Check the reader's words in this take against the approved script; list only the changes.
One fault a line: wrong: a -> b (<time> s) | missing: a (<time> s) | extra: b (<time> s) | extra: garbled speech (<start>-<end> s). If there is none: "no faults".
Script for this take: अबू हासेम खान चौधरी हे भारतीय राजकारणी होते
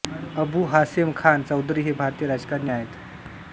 wrong: होते -> आहेत (2.7 s)